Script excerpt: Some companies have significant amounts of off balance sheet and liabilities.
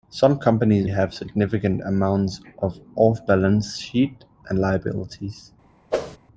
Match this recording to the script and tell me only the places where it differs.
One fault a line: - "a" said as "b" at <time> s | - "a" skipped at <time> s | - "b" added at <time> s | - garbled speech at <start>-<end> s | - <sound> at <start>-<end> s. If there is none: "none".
- whoosh at 5.9-6.2 s